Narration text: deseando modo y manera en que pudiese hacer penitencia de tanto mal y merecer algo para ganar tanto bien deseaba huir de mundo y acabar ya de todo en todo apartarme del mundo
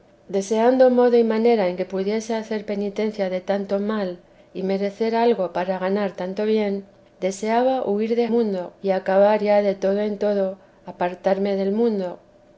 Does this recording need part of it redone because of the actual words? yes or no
no